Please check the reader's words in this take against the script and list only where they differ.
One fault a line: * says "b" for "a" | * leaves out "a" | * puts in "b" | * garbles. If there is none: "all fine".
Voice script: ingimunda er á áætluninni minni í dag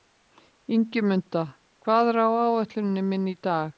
* puts in "hvað"